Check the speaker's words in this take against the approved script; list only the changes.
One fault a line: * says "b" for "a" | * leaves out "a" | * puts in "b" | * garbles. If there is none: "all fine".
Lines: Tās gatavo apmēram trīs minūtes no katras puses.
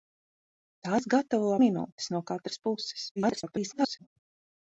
* leaves out "apmēram trīs"
* garbles